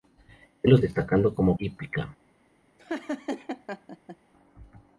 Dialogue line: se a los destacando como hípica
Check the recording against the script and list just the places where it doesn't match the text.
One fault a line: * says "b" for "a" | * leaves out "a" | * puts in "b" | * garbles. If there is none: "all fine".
all fine